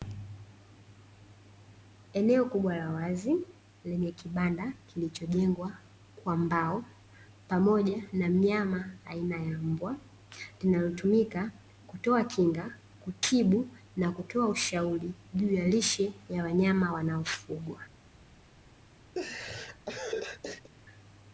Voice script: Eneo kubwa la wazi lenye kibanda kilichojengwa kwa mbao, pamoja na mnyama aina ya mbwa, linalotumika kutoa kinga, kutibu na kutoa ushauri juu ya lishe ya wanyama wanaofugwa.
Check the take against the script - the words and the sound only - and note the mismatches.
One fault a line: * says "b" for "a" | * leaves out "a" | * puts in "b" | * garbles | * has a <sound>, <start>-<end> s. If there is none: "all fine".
* has a laugh, 19.1-20.7 s